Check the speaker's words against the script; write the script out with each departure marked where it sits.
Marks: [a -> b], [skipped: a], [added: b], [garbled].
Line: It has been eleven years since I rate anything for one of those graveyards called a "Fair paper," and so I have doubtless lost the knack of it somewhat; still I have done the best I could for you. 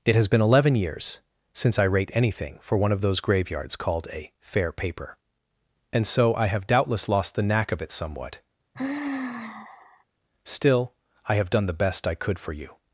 It has been eleven years since I rate anything for one of those graveyards called a "Fair paper," and so I have doubtless lost the knack of it somewhat; still I have done the best I could for you.